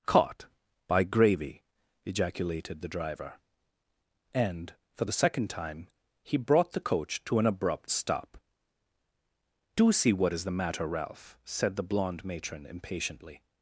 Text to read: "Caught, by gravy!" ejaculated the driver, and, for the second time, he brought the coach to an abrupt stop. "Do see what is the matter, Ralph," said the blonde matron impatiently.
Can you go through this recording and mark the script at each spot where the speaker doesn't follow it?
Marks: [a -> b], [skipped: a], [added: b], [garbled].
"Caught, by gravy!" ejaculated the driver, and, for the second time, he brought the coach to an abrupt stop. "Do see what is the matter, Ralph," said the blonde matron impatiently.